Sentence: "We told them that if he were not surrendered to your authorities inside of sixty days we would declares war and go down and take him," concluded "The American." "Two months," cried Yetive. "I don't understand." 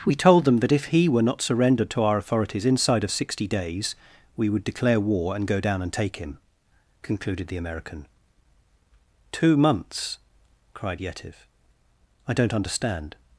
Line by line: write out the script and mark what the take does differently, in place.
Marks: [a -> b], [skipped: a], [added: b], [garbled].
"We told them that if he were not surrendered to [your -> our] authorities inside of sixty days we would [declares -> declare] war and go down and take him," concluded "The American." "Two months," cried Yetive. "I don't understand."